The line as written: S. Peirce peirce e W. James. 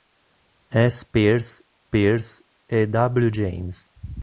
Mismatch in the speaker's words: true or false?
false